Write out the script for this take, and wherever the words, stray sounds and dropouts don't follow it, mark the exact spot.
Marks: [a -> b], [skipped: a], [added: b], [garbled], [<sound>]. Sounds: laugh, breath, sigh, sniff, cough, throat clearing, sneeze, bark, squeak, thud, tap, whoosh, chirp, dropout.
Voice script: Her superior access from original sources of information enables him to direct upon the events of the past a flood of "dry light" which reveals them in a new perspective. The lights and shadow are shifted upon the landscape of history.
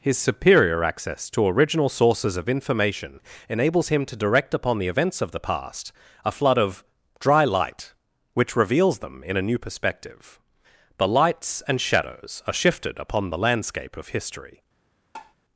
[Her -> His] superior access [from -> to] original sources of information enables him to direct upon the events of the past a flood of "dry light" which reveals them in a new perspective. The lights and [shadow -> shadows] are shifted upon the landscape of history. [tap]